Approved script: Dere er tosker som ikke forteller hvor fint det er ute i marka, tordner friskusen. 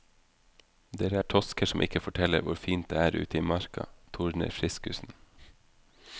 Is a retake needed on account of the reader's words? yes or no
no